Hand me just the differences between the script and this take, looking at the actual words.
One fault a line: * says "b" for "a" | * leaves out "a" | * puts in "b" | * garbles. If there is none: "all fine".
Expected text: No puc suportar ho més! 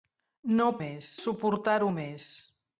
* says "més" for "puc"